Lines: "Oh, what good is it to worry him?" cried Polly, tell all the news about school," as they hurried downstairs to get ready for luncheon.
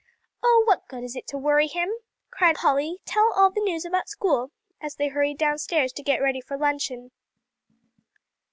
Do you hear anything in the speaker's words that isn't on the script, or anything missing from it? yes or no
no